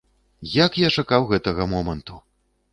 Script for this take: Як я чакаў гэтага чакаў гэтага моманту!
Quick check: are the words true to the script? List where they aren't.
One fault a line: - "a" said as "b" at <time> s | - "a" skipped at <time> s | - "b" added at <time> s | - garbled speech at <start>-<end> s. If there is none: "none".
- "чакаў гэтага" skipped at 1.7 s